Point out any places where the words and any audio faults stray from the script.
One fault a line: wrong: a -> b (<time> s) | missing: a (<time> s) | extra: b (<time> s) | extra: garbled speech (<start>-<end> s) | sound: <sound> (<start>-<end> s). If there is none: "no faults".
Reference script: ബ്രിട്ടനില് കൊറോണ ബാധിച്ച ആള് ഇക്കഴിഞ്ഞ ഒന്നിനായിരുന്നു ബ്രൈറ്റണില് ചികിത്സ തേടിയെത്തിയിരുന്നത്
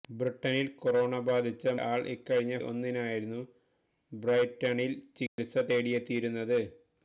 sound: dropout (5.3-5.4 s)